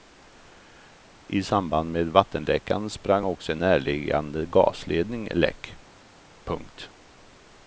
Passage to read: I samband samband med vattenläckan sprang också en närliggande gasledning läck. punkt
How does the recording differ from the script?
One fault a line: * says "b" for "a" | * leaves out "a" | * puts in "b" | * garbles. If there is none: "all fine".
* leaves out "samband"